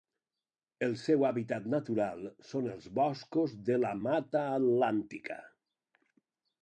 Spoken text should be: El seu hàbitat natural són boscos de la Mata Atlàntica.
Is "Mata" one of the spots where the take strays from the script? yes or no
no